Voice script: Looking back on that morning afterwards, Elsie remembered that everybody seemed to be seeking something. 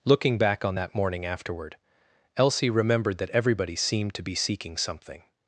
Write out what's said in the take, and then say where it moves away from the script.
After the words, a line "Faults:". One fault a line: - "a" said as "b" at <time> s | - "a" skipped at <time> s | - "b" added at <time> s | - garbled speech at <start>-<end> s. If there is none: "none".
Looking back on that morning afterward, Elsie remembered that everybody seemed to be seeking something.
Faults:
- "afterwards" said as "afterward" at 1.2 s